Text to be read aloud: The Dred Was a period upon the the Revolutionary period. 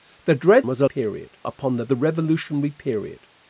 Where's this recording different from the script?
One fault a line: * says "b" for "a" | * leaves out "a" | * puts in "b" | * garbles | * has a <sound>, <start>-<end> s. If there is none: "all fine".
all fine